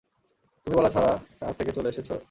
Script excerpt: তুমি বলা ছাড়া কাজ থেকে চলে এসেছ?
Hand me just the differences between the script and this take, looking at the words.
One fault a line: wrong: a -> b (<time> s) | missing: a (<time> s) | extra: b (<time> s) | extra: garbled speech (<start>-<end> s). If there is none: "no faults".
no faults